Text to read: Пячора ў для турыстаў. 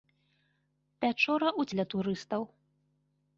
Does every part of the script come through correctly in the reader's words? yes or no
yes